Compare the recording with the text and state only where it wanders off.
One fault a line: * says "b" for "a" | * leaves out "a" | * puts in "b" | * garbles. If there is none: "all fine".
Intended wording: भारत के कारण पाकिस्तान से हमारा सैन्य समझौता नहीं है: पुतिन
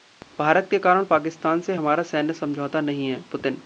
all fine